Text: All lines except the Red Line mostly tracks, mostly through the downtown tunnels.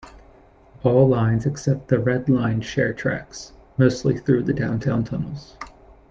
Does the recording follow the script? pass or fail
fail